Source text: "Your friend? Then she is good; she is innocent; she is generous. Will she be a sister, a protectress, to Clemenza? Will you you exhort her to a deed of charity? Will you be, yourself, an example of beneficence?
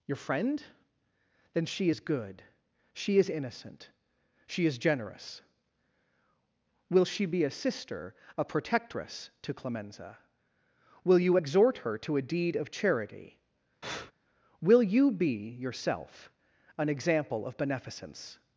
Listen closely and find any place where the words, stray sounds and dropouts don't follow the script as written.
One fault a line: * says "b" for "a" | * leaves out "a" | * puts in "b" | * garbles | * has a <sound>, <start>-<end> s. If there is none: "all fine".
* leaves out "you"
* has a breath, 13.8-14.1 s